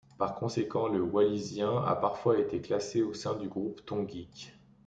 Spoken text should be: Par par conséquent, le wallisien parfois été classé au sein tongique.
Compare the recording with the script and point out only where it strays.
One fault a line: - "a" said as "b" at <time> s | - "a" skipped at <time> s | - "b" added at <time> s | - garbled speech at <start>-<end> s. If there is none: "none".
- "par" skipped at 0.3 s
- "a" added at 1.8 s
- "du groupe" added at 3.4 s